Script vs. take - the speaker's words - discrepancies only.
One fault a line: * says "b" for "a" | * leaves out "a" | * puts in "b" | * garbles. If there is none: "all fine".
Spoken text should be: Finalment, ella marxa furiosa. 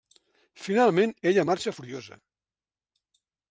all fine